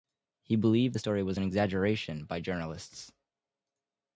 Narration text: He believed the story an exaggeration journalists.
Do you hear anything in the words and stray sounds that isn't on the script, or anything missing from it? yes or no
yes